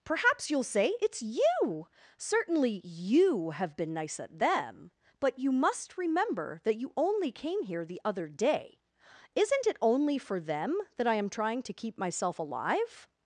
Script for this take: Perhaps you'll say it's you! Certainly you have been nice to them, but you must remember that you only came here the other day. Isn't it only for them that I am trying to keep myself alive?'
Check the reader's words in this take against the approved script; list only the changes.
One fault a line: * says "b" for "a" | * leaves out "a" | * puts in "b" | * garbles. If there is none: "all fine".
* says "at" for "to"